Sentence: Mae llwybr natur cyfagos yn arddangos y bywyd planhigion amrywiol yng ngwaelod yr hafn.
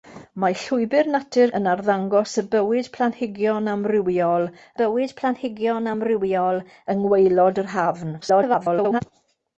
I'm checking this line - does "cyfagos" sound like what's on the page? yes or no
no